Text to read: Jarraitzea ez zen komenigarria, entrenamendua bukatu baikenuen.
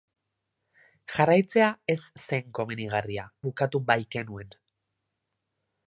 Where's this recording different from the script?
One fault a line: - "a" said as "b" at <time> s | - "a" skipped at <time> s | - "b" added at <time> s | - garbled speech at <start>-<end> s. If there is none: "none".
- "entrenamendua" skipped at 3.3 s